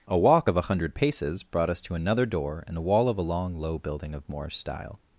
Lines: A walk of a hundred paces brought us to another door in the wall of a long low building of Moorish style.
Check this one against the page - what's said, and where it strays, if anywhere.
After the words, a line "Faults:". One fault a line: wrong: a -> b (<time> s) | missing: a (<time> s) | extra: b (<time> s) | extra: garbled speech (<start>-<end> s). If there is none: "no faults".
A walk of a hundred paces brought us to another door in the wall of a long low building of Moorish style.
Faults:
no faults